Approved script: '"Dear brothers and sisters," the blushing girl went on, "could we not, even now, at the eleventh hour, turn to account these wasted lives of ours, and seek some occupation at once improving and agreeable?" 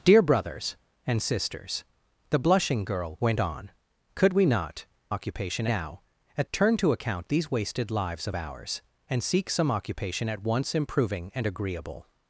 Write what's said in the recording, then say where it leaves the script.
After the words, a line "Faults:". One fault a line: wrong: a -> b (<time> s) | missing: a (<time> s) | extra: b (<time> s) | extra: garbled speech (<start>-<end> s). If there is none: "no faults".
'"Dear brothers and sisters," the blushing girl went on, "could we not, occupation now, at turn to account these wasted lives of ours, and seek some occupation at once improving and agreeable?"
Faults:
wrong: even -> occupation (5.1 s)
missing: the eleventh hour (6.5 s)